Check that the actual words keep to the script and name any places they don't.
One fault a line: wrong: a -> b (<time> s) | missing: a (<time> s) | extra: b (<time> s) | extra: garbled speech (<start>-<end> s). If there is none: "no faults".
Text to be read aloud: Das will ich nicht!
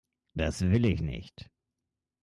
no faults